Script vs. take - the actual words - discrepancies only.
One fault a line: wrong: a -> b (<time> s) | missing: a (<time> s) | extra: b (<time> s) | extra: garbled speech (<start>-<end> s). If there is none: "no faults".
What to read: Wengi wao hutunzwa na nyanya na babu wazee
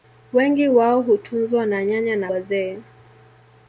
missing: babu (2.3 s)